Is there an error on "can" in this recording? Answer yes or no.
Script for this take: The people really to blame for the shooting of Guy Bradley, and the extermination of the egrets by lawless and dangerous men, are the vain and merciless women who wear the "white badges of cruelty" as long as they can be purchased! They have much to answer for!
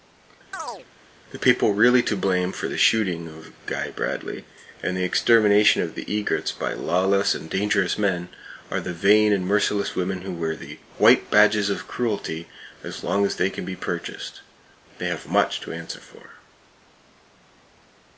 no